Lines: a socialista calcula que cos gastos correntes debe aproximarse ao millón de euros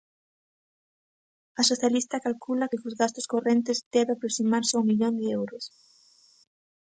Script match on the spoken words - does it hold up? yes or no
yes